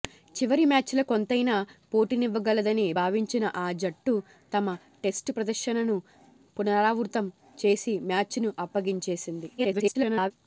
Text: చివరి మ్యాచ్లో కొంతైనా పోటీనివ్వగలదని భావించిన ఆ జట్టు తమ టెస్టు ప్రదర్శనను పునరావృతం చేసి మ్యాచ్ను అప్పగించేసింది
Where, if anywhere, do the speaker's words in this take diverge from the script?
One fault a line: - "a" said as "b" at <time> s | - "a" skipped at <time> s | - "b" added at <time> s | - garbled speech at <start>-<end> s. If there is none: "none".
- garbled speech at 9.6-10.3 s